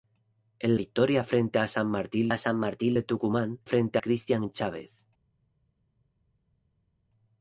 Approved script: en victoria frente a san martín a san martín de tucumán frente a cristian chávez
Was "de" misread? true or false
false